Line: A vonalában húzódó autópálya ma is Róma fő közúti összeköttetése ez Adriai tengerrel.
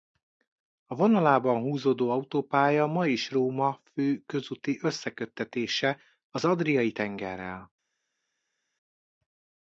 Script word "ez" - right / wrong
wrong